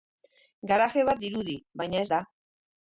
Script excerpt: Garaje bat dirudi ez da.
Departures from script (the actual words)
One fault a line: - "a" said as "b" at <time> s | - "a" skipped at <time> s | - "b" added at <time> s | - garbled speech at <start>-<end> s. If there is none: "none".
- "baina" added at 1.8 s